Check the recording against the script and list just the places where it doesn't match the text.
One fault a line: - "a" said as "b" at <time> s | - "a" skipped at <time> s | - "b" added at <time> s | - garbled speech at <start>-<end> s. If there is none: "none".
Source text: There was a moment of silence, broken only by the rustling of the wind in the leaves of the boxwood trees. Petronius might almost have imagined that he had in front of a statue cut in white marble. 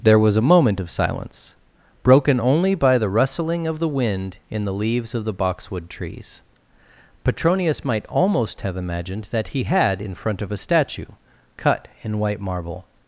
none